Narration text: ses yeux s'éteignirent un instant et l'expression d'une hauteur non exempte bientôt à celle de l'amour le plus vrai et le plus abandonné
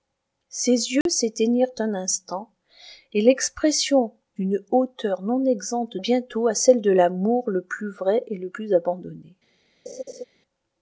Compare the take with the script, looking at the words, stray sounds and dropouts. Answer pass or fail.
fail